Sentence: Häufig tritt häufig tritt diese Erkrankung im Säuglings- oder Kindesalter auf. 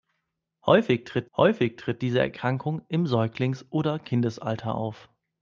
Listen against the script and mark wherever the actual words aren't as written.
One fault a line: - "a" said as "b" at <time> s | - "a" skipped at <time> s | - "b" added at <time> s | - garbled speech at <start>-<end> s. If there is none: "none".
none